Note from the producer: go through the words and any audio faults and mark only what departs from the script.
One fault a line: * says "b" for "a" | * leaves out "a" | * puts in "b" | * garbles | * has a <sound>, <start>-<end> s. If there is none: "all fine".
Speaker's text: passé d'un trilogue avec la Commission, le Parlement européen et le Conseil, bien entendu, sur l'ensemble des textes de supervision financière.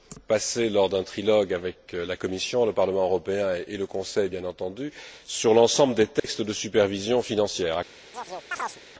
* puts in "lors"
* has a dropout, 6.2-6.2 s
* has a chirp, 8.1-8.8 s